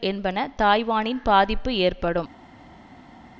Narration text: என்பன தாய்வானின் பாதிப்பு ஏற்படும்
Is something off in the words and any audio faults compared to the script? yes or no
no